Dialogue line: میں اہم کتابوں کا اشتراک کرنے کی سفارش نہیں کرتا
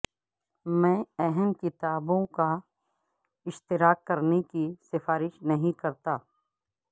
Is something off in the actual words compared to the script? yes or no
no